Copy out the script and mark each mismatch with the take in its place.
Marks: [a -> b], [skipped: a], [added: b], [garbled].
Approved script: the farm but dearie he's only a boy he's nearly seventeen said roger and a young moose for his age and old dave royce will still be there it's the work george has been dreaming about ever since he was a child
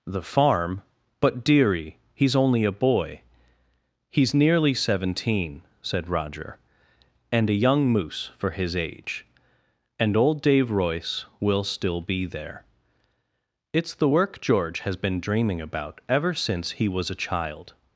the farm but dearie he's only a boy he's nearly seventeen said roger and a young moose for his age and old dave royce will still be there it's the work george has been dreaming about ever since he was a child